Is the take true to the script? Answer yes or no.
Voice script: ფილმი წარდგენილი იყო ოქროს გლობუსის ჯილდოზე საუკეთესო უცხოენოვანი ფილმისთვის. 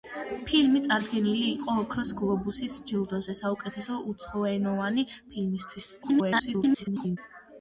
no